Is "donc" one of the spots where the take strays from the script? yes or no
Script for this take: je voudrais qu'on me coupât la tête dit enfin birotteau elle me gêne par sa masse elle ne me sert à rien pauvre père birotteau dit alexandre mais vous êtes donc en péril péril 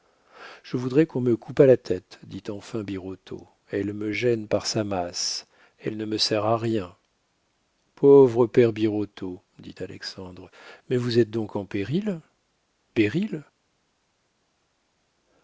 no